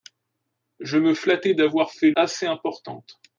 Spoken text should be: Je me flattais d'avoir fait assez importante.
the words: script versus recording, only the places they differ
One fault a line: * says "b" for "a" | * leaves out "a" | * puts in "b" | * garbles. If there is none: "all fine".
all fine